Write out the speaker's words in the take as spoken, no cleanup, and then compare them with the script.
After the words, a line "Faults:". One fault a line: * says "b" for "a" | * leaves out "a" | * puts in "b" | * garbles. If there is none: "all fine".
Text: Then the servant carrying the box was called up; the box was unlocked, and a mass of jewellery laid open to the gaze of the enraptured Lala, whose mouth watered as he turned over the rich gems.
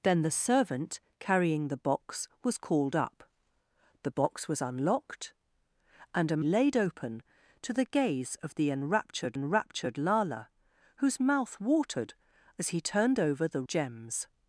Then the servant carrying the box was called up; the box was unlocked, and a laid open to the gaze of the enraptured enraptured Lala, whose mouth watered as he turned over the gems.
Faults:
* leaves out "mass of jewellery"
* puts in "enraptured"
* leaves out "rich"